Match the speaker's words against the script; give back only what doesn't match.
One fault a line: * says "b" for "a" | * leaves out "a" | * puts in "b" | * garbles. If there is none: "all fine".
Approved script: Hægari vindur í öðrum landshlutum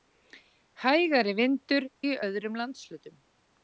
all fine